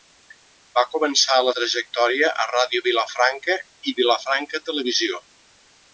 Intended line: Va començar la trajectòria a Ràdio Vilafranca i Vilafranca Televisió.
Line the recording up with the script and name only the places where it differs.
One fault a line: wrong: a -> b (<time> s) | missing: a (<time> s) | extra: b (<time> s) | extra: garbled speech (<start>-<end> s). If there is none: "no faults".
no faults